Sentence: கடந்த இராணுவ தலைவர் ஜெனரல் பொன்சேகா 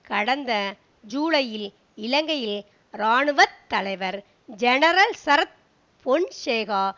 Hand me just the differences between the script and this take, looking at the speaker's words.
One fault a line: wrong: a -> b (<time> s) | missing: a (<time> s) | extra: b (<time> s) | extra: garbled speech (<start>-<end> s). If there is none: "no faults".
extra: ஜூலையில் இலங்கையில் (1.1 s)
extra: சரத் (5.2 s)